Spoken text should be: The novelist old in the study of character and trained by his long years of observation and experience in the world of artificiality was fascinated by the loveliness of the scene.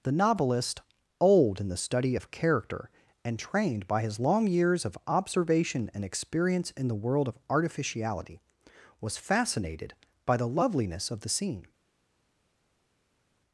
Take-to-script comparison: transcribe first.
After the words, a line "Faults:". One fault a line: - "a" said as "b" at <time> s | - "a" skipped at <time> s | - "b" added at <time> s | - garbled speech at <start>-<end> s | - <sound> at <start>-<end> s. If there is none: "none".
The novelist old in the study of character and trained by his long years of observation and experience in the world of artificiality was fascinated by the loveliness of the scene.
Faults:
none